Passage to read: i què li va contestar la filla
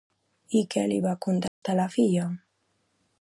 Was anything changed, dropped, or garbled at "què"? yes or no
no